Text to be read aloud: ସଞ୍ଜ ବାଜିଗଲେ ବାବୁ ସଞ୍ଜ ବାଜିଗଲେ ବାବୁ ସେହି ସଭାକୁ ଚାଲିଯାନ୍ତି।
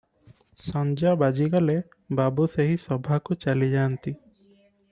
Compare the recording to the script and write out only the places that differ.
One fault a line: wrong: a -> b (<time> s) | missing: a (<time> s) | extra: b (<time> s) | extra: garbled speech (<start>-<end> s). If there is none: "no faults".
missing: ସଞ୍ଜ ବାଜିଗଲେ ବାବୁ (2.5 s)